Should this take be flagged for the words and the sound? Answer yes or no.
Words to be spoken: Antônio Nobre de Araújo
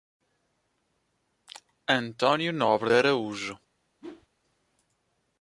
yes